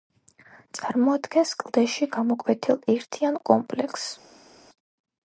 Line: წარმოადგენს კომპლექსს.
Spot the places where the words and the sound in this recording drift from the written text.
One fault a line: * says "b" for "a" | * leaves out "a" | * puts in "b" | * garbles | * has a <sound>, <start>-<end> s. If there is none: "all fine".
* puts in "კლდეში გამოკვეთილ ერთიან"